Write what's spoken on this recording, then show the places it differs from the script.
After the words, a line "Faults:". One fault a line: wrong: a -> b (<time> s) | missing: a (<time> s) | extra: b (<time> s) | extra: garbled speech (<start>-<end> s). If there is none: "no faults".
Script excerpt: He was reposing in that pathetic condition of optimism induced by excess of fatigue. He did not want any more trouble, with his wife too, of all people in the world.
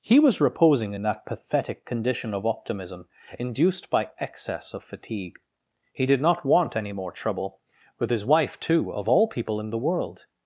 He was reposing in that pathetic condition of optimism induced by excess of fatigue. He did not want any more trouble, with his wife too, of all people in the world.
Faults:
no faults